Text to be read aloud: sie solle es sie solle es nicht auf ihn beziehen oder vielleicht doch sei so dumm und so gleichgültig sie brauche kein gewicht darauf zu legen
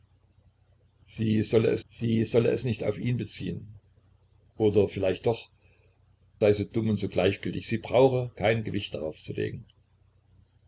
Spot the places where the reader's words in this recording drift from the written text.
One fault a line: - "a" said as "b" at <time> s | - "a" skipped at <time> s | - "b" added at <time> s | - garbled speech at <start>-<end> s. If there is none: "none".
none